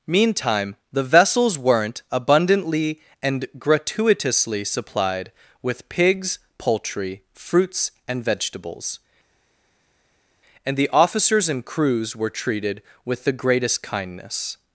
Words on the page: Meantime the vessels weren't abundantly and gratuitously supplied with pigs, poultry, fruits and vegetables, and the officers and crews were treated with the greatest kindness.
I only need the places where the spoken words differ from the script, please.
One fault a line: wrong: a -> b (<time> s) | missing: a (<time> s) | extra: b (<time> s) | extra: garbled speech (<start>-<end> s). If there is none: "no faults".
no faults